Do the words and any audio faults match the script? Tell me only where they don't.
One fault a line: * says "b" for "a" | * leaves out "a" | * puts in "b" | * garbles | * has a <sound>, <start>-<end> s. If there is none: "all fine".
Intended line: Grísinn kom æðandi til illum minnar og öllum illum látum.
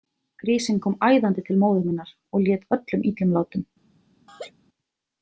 * says "móður" for "illum"
* puts in "lét"
* has a laugh, 4.3-4.5 s